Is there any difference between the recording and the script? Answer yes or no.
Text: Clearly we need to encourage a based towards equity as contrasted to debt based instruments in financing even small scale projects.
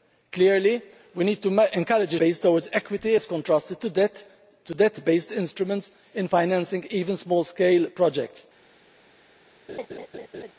no